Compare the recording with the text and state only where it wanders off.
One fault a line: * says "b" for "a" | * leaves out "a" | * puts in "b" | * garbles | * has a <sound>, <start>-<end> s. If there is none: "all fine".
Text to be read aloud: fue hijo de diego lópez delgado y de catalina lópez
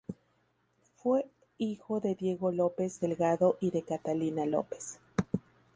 all fine